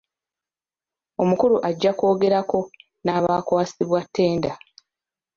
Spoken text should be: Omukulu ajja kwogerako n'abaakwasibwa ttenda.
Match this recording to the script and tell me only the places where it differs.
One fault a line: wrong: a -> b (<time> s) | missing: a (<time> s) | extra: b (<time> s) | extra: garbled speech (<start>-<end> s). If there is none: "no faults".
no faults